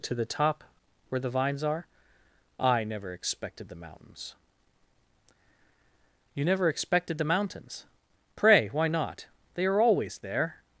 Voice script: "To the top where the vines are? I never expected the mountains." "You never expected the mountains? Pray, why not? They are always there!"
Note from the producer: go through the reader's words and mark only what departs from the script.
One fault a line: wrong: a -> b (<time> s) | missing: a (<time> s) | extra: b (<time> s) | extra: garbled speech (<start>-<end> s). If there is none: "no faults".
no faults